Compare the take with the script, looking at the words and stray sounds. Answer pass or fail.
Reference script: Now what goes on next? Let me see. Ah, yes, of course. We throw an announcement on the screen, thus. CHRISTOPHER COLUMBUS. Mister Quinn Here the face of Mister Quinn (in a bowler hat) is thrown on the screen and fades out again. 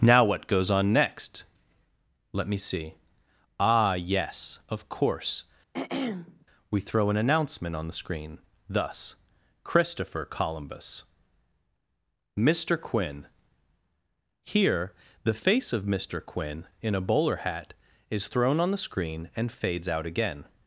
fail